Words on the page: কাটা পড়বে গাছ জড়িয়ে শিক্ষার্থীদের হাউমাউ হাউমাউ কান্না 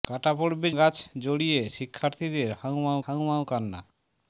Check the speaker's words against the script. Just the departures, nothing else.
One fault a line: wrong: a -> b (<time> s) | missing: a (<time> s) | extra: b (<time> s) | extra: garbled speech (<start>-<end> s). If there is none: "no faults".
no faults